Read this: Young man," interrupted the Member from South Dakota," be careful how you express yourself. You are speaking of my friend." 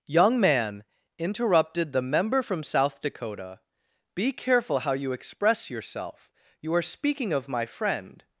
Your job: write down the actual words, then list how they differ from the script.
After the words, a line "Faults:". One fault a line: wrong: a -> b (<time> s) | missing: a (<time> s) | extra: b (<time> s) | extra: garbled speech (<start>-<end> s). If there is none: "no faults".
Young man," interrupted the Member from South Dakota," be careful how you express yourself. You are speaking of my friend."
Faults:
no faults